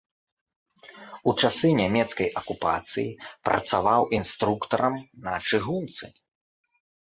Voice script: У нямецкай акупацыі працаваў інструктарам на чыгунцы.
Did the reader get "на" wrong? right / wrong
right